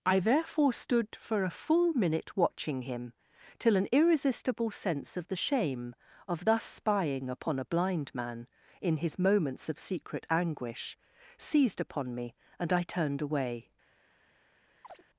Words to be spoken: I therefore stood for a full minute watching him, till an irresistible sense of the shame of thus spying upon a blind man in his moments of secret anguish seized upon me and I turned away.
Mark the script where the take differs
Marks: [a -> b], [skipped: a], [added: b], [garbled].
I therefore stood for a full minute watching him, till an irresistible sense of the shame of thus spying upon a blind man in his moments of secret anguish seized upon me and I turned away.